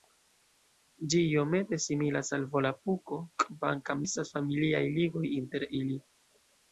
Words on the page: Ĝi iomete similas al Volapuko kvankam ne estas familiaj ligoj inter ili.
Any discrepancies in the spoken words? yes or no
yes